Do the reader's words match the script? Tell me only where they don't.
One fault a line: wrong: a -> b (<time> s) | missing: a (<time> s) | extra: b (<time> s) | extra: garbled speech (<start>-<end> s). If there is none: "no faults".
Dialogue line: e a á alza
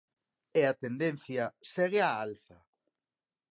extra: tendencia segue (0.8 s)